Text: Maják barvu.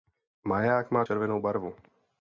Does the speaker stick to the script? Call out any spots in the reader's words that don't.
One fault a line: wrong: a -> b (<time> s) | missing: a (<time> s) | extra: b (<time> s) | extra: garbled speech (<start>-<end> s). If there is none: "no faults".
extra: má červenou (0.9 s)